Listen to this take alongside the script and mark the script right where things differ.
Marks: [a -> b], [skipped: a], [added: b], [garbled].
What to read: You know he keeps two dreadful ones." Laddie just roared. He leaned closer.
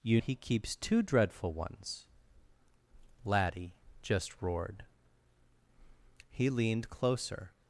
You [skipped: know] he keeps two dreadful ones." Laddie just roared. He leaned closer.